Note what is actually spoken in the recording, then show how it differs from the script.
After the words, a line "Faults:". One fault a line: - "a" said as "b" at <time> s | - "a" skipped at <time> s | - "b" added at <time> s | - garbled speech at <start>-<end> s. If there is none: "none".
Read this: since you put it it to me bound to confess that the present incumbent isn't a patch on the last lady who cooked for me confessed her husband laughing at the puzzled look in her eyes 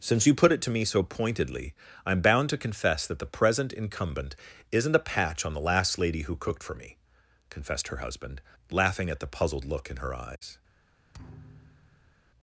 since you put it to me so pointedly i'm bound to confess that the present incumbent isn't a patch on the last lady who cooked for me confessed her husband laughing at the puzzled look in her eyes
Faults:
- "it" skipped at 0.6 s
- "so pointedly i'm" added at 0.8 s